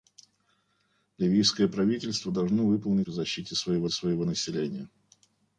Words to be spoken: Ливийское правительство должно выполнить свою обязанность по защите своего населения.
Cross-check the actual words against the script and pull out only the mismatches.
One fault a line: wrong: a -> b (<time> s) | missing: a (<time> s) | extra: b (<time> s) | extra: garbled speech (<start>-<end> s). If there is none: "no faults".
missing: свою обязанность (3.1 s)
extra: своего (3.9 s)